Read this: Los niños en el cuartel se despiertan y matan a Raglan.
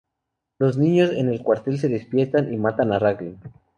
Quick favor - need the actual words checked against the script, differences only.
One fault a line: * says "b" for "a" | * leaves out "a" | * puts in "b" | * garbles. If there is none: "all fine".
all fine